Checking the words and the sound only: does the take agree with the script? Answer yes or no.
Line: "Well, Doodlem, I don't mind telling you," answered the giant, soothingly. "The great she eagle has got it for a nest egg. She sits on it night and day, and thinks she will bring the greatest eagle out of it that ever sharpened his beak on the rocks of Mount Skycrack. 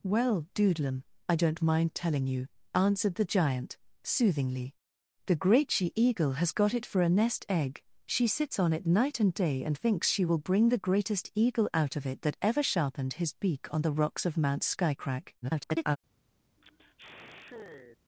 no